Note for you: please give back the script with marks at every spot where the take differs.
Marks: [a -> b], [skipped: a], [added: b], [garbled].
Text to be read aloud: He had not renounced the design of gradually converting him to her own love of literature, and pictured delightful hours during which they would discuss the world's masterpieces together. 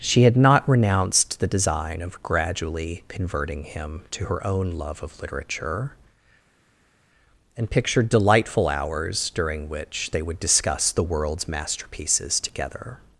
[He -> She] had not renounced the design of gradually converting him to her own love of literature, and pictured delightful hours during which they would discuss the world's masterpieces together.